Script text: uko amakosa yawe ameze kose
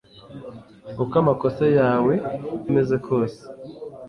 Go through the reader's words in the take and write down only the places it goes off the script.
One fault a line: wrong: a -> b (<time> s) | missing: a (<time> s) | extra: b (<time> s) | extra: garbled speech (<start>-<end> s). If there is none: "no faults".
no faults